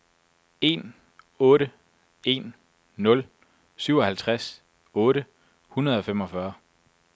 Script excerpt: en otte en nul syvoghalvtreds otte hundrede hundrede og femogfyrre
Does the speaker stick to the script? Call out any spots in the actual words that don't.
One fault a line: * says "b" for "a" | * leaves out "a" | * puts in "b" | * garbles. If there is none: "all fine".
* leaves out "hundrede"